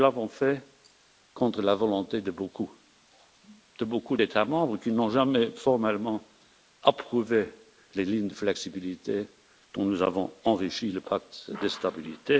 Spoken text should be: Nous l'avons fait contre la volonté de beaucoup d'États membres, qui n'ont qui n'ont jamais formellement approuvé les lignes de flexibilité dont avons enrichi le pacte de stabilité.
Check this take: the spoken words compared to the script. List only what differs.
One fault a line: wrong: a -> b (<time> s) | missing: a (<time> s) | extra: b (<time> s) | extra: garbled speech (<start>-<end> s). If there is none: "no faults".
missing: qui n'ont (5.1 s)
extra: nous (9.8 s)